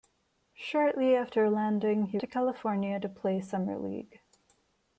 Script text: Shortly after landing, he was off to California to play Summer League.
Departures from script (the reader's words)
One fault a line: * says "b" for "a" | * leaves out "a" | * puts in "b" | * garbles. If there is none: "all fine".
* leaves out "was off"